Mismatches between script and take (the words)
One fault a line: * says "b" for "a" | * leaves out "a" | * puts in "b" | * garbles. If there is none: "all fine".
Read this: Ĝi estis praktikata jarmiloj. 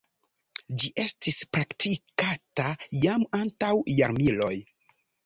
* puts in "jam antaŭ"